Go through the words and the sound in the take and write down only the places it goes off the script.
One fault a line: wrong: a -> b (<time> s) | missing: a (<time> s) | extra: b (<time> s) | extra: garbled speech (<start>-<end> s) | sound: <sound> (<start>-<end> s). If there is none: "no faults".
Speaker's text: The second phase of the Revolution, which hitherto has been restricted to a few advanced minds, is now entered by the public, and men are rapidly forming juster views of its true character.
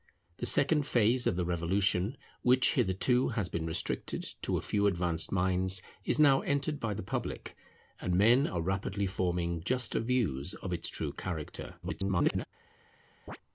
extra: garbled speech (11.8-12.5 s)
sound: chirp (13.3-13.4 s)